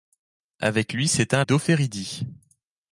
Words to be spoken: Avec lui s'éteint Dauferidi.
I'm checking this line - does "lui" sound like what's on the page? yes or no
yes